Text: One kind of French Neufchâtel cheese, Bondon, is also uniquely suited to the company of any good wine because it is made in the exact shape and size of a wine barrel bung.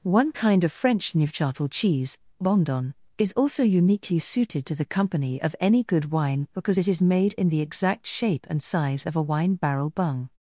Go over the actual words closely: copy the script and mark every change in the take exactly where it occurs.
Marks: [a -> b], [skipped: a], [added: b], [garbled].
One kind of French Neufchâtel cheese, Bondon, is also uniquely suited to the company of any good wine because it is made in the exact shape and size of a wine barrel bung.